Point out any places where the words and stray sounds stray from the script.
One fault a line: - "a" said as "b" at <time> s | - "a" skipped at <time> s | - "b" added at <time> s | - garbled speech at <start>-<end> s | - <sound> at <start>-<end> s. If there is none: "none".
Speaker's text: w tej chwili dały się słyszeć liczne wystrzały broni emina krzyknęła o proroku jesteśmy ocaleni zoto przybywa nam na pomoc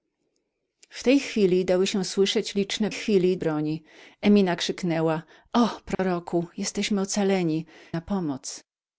- "wystrzały" said as "chwili" at 2.9 s
- dropout at 5.9-6.0 s
- "zoto przybywa nam" skipped at 7.6 s